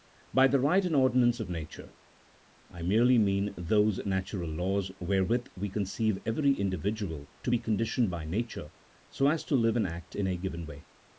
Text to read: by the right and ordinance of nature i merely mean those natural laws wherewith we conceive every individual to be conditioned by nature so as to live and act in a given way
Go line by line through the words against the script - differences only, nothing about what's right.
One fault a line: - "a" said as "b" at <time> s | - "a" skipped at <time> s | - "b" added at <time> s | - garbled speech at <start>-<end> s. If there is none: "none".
none